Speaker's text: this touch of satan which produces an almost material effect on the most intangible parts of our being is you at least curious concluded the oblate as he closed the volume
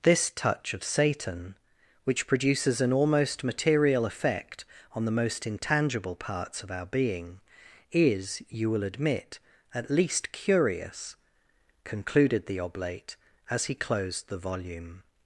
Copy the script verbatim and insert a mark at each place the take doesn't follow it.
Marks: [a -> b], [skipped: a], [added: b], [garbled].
this touch of satan which produces an almost material effect on the most intangible parts of our being is you [added: will admit] at least curious concluded the oblate as he closed the volume